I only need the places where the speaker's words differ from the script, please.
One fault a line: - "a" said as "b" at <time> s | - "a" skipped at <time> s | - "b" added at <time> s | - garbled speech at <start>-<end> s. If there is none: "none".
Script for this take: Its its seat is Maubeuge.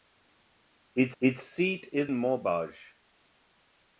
none